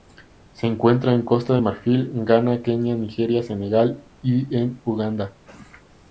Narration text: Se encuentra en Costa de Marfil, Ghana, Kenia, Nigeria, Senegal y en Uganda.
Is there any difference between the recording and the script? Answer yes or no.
no